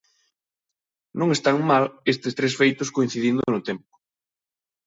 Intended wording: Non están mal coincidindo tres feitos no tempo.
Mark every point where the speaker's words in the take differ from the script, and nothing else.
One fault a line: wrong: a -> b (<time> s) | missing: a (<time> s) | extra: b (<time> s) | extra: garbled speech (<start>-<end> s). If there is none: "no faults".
wrong: coincidindo -> estes (2.1 s)
extra: coincidindo (3.0 s)